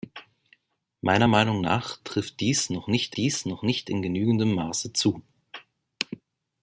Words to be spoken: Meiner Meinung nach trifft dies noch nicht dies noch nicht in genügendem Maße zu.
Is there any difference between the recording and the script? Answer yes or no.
no